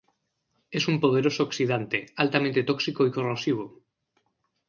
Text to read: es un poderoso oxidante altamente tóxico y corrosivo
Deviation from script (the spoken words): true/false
false